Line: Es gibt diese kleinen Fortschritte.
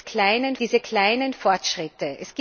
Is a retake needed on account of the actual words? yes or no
yes